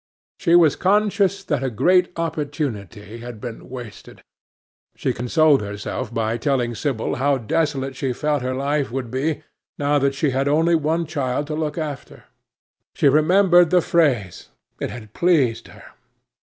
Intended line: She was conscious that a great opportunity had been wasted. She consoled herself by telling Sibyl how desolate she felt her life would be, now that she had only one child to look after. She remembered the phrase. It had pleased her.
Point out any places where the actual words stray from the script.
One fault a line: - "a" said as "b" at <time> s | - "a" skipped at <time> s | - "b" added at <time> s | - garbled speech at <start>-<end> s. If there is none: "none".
none